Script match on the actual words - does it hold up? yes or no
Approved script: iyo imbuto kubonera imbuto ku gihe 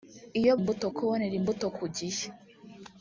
yes